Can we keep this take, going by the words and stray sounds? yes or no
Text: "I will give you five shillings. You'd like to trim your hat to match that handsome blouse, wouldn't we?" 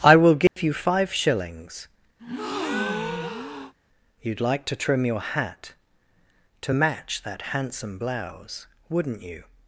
no